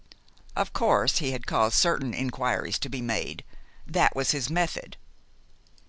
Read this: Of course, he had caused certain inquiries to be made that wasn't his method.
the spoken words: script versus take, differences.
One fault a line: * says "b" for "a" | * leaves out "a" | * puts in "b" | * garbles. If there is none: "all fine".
* says "was" for "wasn't"